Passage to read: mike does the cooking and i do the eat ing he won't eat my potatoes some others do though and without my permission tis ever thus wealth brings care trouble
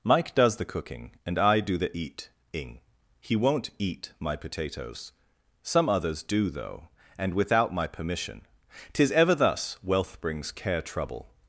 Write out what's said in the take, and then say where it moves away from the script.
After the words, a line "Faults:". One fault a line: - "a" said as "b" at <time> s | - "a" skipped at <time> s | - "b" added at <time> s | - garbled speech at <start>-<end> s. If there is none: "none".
mike does the cooking and i do the eat ing he won't eat my potatoes some others do though and without my permission tis ever thus wealth brings care trouble
Faults:
none